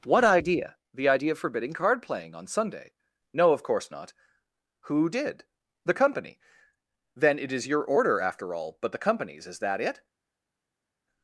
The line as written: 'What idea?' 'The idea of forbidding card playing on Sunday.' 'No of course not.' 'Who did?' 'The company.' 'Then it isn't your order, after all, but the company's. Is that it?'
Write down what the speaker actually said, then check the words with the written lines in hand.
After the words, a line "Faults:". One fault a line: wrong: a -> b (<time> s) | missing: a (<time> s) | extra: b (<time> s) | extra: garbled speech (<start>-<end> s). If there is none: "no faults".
'What idea?' 'The idea of forbidding card playing on Sunday.' 'No of course not.' 'Who did?' 'The company.' 'Then it is your order, after all, but the company's. Is that it?'
Faults:
wrong: isn't -> is (7.5 s)